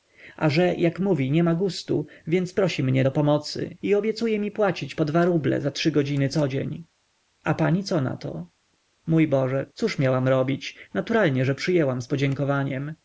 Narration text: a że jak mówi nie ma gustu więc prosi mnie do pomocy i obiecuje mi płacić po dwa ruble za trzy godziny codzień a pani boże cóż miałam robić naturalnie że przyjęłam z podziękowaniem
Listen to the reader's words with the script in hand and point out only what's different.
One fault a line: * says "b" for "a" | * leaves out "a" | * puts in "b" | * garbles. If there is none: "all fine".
* puts in "co nato mój"